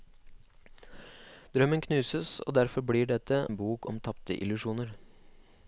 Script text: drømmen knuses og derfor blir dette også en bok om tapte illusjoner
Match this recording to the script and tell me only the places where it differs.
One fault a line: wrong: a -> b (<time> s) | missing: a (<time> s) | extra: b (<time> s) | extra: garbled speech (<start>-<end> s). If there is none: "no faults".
missing: også (3.5 s)